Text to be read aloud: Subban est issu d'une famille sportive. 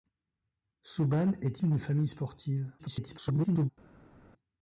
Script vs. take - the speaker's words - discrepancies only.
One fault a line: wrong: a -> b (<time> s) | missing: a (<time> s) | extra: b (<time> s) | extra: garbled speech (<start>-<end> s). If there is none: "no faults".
missing: issu (1.6 s)
extra: garbled speech (2.8-3.7 s)